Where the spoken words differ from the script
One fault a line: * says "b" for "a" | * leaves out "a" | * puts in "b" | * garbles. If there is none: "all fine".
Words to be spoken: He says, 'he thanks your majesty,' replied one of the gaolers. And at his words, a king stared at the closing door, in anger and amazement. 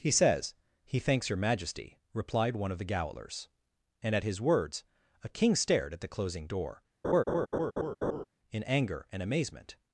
all fine